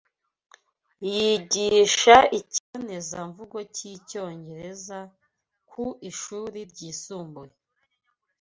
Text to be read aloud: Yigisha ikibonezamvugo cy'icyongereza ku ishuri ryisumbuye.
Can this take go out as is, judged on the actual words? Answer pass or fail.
pass